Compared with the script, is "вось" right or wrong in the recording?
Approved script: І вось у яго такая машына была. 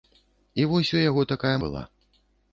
right